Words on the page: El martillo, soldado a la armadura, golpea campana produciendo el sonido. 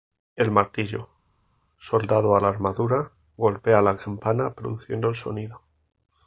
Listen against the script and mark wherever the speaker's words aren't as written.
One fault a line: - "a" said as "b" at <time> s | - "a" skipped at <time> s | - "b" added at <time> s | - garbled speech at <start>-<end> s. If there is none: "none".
- "la" added at 3.8 s